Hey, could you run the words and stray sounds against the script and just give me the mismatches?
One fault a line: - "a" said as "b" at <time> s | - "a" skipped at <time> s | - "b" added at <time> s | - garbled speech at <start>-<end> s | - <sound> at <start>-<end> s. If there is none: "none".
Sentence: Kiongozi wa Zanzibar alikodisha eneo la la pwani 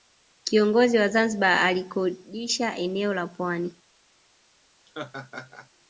- "la" skipped at 3.3 s
- laugh at 4.9-5.7 s